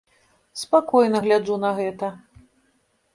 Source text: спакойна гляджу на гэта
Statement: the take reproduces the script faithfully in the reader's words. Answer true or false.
true